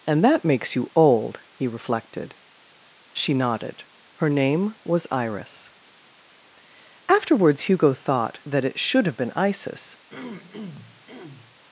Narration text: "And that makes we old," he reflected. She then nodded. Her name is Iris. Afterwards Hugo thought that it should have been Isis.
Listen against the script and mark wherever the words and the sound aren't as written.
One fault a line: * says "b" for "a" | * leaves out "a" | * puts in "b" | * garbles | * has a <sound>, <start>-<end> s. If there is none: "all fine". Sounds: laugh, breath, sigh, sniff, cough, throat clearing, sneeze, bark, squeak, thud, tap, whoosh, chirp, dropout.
* says "you" for "we"
* leaves out "then"
* says "was" for "is"
* has a throat clearing, 10.1-11.6 s